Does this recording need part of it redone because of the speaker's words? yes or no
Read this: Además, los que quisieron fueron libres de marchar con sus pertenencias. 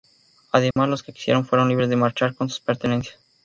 no